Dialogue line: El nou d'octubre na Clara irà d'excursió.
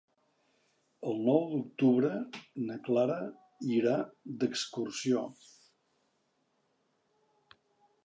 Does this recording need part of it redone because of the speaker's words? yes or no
no